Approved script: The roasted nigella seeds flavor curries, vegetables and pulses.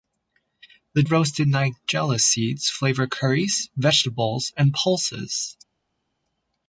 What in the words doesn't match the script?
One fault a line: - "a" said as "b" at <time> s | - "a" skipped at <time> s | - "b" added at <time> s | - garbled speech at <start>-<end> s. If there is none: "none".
none